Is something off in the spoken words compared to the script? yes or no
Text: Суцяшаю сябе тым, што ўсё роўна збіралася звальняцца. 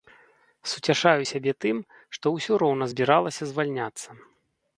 no